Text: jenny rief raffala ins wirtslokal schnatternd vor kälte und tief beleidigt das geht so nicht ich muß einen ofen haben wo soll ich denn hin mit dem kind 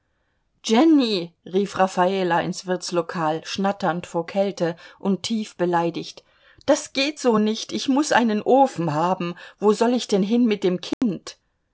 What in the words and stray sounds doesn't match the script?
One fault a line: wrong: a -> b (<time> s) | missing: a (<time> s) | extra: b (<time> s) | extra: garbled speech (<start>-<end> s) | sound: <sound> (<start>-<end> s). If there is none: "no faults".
sound: dropout (10.9-11.0 s)